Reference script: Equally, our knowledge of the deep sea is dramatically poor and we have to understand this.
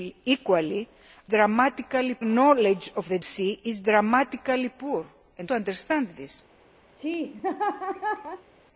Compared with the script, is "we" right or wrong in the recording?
wrong